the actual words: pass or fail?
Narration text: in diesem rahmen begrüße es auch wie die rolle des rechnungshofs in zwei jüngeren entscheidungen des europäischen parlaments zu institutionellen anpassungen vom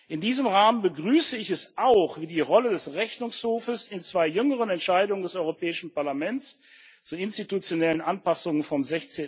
fail